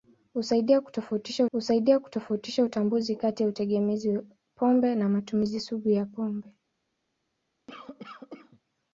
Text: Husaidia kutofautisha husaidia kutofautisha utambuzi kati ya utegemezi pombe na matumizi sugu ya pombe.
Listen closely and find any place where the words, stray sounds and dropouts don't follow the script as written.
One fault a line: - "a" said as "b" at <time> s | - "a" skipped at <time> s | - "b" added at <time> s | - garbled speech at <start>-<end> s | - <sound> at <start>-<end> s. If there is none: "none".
- cough at 7.7-8.6 s